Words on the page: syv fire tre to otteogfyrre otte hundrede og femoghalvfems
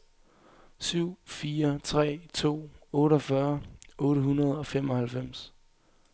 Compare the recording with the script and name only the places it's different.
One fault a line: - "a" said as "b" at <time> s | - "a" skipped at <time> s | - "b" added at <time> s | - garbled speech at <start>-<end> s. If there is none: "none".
none